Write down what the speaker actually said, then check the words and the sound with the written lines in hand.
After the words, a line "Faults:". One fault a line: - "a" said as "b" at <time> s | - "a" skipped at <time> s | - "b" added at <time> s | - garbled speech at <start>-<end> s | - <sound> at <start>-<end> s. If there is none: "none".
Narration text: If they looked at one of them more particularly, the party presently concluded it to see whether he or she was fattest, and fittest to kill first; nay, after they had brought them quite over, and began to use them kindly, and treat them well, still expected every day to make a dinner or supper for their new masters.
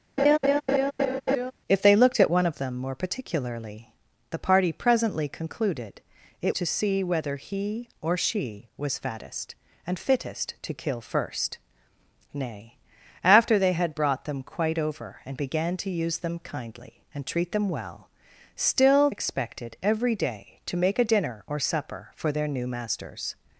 If they looked at one of them more particularly, the party presently concluded it to see whether he or she was fattest, and fittest to kill first; nay, after they had brought them quite over, and began to use them kindly, and treat them well, still expected every day to make a dinner or supper for their new masters.
Faults:
- laugh at 0.2-1.5 s